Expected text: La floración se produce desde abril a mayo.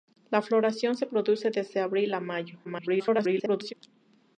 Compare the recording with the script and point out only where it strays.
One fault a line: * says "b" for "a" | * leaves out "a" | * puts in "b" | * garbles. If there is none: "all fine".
* garbles